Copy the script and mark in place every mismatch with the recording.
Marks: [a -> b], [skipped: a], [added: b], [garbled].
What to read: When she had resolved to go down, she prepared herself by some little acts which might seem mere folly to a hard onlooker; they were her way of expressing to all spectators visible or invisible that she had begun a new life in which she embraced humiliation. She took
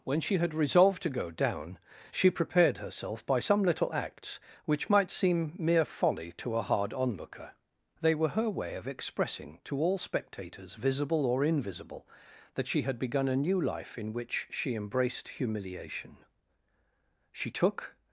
When she had resolved to go down, she prepared herself by some little acts which might seem mere folly to a hard onlooker; they were her way of expressing to all spectators visible or invisible that she had begun a new life in which she embraced humiliation. She took